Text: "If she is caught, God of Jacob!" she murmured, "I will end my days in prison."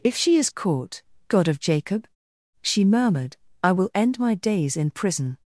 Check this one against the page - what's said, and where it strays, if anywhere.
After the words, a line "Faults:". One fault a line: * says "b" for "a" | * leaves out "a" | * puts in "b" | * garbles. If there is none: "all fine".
"If she is caught, God of Jacob!" she murmured, "I will end my days in prison."
Faults:
all fine